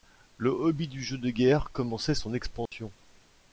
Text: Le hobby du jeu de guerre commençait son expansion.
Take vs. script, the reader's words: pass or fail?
pass